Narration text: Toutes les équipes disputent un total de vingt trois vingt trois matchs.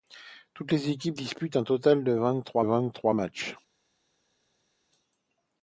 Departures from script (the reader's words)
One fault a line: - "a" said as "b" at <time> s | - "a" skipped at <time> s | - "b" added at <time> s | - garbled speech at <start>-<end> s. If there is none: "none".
none